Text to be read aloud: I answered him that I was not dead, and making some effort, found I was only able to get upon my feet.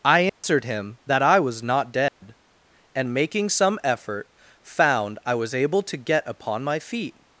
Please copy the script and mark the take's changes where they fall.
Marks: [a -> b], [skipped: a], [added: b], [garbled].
I answered him that I was not dead, and making some effort, found I was [skipped: only] able to get upon my feet.